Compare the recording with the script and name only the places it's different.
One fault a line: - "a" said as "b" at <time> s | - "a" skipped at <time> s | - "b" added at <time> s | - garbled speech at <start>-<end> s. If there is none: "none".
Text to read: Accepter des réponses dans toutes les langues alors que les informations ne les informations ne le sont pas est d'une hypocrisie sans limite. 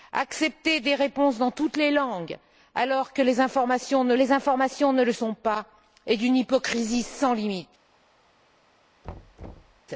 none